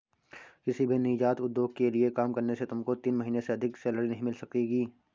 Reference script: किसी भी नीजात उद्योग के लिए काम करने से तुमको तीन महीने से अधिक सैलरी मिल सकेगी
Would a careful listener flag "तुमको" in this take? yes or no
no